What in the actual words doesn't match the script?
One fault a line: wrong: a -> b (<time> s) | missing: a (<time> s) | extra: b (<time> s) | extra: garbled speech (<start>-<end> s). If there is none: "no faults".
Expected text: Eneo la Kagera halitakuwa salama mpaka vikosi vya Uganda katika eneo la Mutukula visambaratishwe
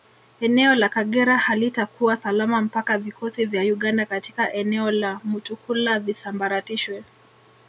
no faults